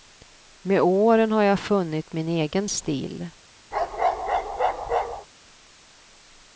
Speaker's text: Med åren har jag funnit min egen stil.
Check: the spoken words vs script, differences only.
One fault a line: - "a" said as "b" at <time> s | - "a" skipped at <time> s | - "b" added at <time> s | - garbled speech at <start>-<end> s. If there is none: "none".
none